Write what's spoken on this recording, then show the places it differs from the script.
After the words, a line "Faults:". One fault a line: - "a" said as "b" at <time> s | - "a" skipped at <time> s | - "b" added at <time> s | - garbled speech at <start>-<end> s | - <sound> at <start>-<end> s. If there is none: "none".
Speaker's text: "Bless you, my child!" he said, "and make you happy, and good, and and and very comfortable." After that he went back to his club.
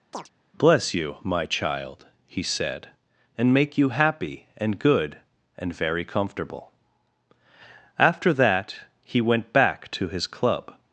"Bless you, my child!" he said, "and make you happy, and good, and very comfortable." After that he went back to his club.
Faults:
- chirp at 0.1-0.3 s
- "and and" skipped at 5.7 s